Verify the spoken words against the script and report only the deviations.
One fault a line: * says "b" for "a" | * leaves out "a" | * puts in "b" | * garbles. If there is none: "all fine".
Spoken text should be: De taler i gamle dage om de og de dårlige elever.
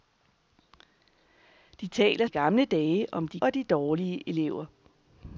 all fine